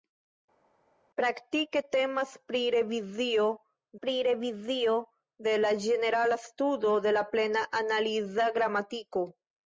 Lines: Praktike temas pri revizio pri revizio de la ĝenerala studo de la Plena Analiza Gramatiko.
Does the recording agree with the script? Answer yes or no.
yes